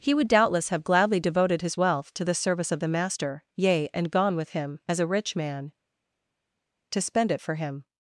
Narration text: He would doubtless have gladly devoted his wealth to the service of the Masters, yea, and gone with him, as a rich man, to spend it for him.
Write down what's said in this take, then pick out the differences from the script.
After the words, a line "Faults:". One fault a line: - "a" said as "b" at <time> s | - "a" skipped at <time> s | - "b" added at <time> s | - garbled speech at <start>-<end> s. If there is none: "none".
He would doubtless have gladly devoted his wealth to the service of the Master, yea, and gone with him, as a rich man, to spend it for him.
Faults:
- "Masters" said as "Master" at 2.9 s